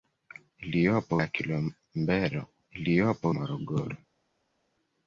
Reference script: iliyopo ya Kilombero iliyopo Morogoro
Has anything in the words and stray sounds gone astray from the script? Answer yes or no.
no